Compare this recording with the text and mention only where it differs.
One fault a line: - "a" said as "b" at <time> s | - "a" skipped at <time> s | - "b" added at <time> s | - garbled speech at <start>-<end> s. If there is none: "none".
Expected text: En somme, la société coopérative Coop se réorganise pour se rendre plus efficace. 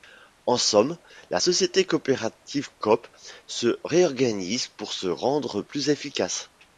none